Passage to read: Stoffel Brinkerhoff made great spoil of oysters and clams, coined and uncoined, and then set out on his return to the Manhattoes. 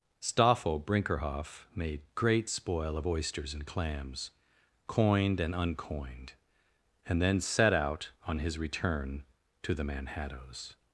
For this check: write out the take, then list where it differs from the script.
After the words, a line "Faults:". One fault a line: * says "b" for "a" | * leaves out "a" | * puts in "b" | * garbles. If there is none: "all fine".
Stoffel Brinkerhoff made great spoil of oysters and clams, coined and uncoined, and then set out on his return to the Manhattoes.
Faults:
all fine